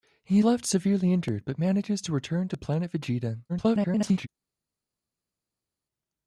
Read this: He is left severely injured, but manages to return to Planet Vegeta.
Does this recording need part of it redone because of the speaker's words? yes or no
yes